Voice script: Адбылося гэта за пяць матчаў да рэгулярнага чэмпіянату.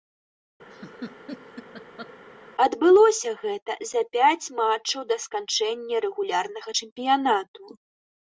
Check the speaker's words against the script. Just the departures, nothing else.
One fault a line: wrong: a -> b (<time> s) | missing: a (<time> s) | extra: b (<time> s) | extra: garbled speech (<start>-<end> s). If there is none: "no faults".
extra: сканчэння (5.2 s)